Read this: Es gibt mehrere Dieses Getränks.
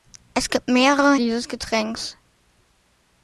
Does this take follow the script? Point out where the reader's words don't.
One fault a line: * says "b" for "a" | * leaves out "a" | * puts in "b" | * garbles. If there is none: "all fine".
all fine